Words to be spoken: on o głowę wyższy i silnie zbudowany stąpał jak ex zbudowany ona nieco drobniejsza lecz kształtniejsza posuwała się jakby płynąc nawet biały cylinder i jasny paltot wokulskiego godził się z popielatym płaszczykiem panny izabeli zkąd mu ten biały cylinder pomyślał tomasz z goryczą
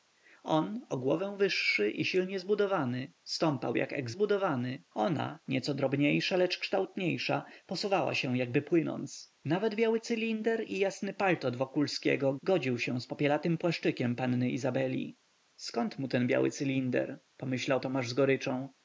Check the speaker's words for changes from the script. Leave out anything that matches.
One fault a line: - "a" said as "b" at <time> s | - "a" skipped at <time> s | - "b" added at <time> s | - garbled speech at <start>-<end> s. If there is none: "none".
none